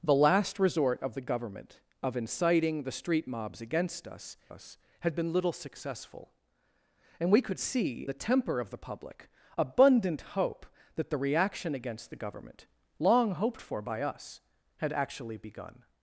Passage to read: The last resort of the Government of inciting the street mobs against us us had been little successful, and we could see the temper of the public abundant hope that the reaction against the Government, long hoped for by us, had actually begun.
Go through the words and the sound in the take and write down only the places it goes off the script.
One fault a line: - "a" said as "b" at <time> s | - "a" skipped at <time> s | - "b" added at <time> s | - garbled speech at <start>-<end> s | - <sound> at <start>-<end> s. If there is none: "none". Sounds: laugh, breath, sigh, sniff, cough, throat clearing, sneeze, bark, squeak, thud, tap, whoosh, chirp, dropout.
none